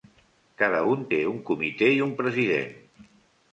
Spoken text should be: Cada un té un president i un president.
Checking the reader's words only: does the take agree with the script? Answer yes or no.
no